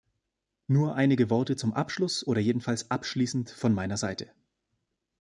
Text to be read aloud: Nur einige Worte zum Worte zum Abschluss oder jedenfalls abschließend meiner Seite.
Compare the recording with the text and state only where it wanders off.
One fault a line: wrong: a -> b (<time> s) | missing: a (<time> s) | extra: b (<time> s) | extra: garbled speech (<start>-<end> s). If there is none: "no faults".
missing: Worte zum (1.7 s)
extra: von (3.5 s)